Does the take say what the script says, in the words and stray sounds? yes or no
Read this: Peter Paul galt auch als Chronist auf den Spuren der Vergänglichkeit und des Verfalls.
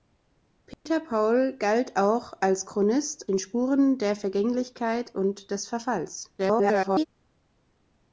no